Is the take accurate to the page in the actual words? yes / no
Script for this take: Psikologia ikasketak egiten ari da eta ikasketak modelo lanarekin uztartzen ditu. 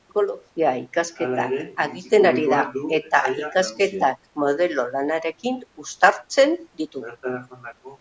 yes